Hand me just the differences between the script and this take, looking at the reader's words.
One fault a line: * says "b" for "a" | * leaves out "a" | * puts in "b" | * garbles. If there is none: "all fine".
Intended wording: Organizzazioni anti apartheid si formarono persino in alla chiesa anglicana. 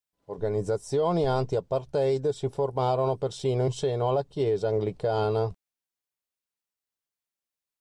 * puts in "seno"